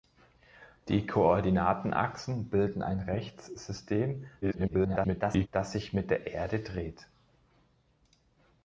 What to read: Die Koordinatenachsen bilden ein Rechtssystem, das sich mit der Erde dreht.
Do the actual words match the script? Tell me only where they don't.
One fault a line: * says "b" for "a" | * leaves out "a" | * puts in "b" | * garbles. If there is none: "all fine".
* garbles